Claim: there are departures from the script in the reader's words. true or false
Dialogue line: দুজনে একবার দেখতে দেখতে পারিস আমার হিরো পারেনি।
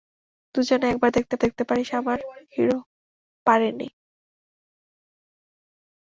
false